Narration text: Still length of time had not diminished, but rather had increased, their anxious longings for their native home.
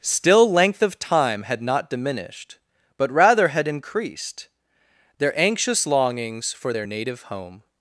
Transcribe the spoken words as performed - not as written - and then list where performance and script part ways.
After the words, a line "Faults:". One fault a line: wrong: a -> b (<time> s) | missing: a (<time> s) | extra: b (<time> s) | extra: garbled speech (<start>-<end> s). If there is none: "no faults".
Still length of time had not diminished, but rather had increased, their anxious longings for their native home.
Faults:
no faults